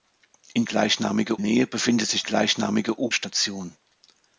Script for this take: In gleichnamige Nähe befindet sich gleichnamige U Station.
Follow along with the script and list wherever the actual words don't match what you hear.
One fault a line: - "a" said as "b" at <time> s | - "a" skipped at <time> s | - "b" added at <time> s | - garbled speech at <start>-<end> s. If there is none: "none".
none